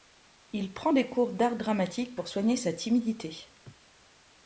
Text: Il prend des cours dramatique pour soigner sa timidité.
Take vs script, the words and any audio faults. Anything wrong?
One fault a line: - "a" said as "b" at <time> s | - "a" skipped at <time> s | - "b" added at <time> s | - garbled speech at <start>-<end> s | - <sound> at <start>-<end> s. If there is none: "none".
- "d'art" added at 1.3 s